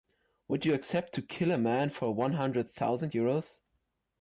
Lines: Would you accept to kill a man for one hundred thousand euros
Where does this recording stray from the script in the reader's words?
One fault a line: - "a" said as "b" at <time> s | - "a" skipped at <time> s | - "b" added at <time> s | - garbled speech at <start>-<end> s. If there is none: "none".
none